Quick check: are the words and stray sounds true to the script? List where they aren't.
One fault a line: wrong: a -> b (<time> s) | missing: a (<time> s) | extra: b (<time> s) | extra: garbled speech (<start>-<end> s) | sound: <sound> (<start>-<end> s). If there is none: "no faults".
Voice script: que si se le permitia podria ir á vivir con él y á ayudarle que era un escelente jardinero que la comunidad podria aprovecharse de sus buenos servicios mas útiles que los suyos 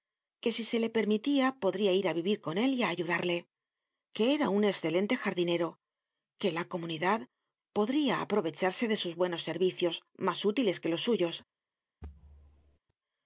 sound: thud (12.0-12.8 s)